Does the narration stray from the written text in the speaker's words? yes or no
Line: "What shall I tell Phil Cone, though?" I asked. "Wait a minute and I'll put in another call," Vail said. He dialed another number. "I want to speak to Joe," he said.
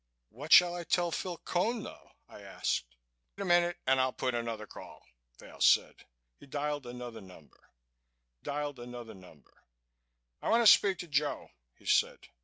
yes